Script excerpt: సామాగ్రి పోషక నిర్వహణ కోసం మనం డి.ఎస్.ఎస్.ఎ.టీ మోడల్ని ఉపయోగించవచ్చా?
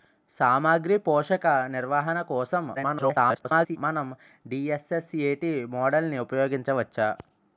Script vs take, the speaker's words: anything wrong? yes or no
yes